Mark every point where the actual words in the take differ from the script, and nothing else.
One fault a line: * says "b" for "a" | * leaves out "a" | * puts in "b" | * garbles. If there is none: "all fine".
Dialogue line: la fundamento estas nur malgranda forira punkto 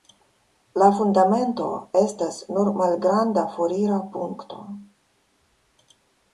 all fine